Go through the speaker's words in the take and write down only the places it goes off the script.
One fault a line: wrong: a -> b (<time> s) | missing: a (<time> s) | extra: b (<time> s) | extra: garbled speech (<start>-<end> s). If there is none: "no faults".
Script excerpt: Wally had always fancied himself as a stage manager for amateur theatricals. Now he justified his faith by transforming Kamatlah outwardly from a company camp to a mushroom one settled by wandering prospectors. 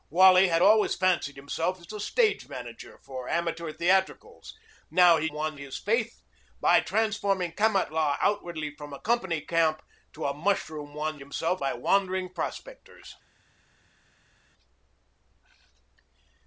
wrong: justified -> one (5.3 s)
wrong: settled -> himself (11.2 s)